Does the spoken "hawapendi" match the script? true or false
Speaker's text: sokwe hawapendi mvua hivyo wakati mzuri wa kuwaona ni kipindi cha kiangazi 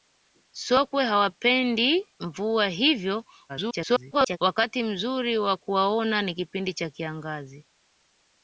true